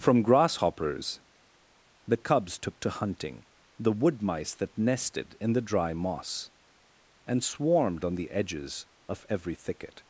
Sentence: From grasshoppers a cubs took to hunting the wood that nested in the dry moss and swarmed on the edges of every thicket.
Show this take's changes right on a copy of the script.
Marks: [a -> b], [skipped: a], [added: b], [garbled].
From grasshoppers [a -> the] cubs took to hunting the wood [added: mice] that nested in the dry moss and swarmed on the edges of every thicket.